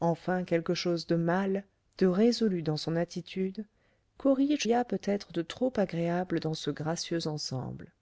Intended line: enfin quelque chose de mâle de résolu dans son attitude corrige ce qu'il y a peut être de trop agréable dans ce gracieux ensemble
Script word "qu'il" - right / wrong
wrong